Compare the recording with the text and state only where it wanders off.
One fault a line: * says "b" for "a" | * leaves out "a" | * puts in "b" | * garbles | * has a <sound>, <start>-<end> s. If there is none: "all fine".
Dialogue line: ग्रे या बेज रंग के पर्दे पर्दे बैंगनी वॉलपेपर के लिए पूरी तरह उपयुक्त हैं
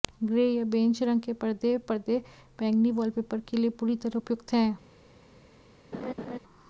* has a laugh, 5.9-6.4 s